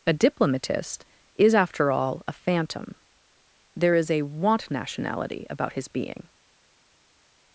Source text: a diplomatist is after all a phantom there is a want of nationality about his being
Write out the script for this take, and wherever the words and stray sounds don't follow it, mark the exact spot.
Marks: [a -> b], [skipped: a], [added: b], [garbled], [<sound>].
a diplomatist is after all a phantom there is a want [skipped: of] nationality about his being